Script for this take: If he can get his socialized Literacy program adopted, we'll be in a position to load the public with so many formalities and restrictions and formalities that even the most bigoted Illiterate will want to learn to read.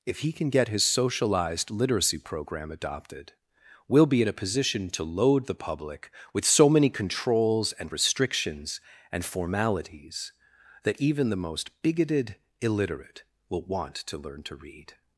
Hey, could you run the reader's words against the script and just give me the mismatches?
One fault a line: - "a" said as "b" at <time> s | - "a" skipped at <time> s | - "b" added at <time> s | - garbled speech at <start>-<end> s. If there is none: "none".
- "formalities" said as "controls" at 6.9 s